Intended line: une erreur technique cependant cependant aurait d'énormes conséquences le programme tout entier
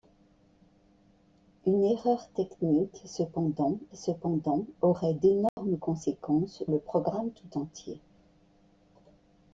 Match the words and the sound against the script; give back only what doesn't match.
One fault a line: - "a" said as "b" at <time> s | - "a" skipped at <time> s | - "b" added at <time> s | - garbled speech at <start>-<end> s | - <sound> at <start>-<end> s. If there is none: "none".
- dropout at 5.5-5.6 s